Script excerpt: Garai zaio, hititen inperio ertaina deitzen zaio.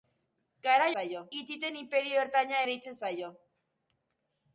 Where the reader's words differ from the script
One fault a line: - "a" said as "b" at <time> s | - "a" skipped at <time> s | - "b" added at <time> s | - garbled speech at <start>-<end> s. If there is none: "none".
none